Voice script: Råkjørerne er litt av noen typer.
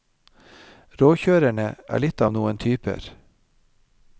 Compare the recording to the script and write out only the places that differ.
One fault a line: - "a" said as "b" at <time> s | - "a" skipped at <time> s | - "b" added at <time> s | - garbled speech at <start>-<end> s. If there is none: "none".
none